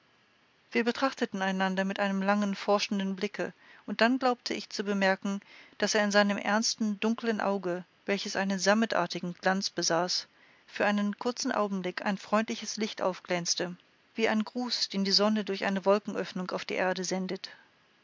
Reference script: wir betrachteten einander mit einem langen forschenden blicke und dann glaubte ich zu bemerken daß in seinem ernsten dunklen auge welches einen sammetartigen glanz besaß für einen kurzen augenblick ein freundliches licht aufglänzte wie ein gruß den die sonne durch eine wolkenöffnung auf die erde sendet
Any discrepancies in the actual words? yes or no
no